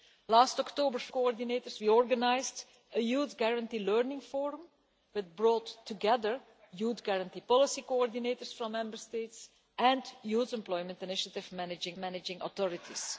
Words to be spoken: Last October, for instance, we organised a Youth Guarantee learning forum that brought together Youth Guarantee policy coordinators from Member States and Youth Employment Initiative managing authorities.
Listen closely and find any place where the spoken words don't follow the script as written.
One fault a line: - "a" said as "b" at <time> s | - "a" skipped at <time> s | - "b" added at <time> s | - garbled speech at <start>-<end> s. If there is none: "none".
- "instance" said as "coordinators" at 1.1 s
- "managing" added at 12.0 s